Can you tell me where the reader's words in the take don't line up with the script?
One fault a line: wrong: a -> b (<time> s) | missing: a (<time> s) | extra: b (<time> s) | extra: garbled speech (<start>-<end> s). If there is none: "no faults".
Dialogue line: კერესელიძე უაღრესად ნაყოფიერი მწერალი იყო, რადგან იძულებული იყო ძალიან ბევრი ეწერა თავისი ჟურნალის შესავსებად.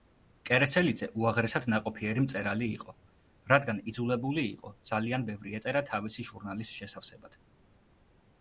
no faults